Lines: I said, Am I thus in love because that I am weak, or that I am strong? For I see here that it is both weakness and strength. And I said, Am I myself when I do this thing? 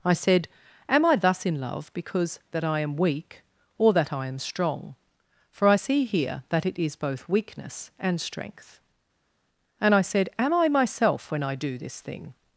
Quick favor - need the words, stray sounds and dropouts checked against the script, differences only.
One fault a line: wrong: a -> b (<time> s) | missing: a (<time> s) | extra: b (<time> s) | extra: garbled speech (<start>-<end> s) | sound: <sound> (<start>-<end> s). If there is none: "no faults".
no faults